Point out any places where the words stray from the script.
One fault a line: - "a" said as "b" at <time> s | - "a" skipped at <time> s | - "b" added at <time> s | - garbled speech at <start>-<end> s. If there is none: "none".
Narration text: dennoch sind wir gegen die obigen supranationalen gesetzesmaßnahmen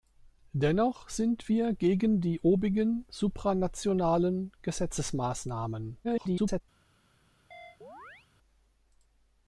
- garbled speech at 6.0-6.6 s